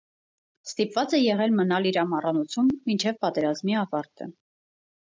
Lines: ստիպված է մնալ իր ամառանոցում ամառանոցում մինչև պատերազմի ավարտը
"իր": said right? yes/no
yes